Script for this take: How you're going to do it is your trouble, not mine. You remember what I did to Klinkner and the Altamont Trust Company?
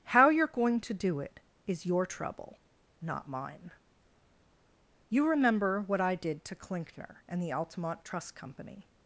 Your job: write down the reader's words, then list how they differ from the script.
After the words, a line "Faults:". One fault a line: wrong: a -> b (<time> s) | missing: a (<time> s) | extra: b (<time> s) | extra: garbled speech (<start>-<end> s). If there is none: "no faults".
How you're going to do it is your trouble, not mine. You remember what I did to Klinkner and the Altamont Trust Company?
Faults:
no faults